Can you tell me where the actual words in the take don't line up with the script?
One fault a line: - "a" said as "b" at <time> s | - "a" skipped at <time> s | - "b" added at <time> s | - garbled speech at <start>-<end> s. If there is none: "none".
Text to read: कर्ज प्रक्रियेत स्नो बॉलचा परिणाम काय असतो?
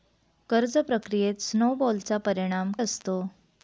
- "काय" skipped at 2.7 s